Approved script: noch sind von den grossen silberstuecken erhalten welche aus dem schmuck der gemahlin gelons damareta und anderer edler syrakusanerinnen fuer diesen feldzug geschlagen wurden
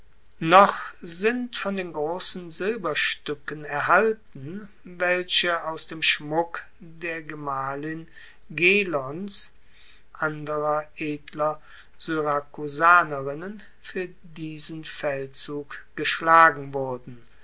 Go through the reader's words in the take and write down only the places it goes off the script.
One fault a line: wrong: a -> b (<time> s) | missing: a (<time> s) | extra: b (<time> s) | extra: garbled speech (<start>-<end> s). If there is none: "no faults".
missing: damareta und (9.5 s)